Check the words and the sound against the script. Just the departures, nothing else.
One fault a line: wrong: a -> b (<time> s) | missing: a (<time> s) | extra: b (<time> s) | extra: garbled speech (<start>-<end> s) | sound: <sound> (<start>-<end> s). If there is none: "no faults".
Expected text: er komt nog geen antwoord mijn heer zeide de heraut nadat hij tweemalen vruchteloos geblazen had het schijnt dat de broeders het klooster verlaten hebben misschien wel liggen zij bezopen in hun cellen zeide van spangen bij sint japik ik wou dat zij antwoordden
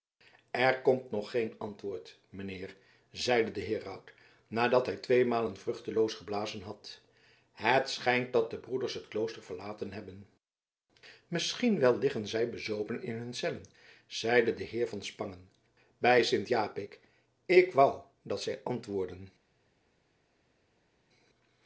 extra: de heer (14.5 s)